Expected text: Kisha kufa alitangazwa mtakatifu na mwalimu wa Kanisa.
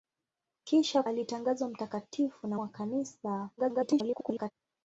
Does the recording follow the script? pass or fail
fail